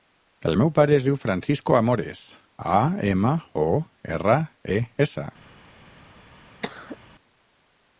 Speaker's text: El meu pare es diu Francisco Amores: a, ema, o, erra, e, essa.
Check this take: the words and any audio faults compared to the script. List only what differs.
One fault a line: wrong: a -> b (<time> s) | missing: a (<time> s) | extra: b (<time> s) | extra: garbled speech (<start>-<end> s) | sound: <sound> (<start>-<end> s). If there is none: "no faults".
sound: cough (6.6-7.0 s)